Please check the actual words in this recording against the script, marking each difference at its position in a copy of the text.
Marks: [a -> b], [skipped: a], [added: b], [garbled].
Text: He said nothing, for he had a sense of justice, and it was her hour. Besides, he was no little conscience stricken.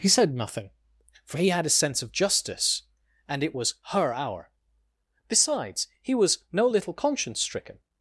He said nothing, for he had a sense of justice, and it was her hour. Besides, he was no little conscience stricken.